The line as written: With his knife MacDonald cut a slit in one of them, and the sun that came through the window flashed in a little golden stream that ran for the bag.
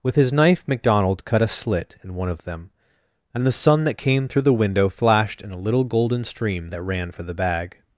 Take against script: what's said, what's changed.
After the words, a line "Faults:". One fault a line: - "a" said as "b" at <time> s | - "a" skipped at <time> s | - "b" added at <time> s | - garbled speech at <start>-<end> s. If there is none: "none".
With his knife MacDonald cut a slit in one of them, and the sun that came through the window flashed in a little golden stream that ran for the bag.
Faults:
none